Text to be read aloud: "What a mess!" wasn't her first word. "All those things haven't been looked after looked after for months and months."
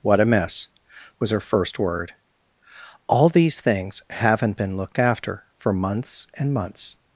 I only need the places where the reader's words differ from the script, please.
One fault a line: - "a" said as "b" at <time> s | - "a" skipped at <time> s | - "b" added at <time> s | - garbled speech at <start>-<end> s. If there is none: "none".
- "wasn't" said as "was" at 1.2 s
- "those" said as "these" at 3.3 s
- "looked after" skipped at 5.4 s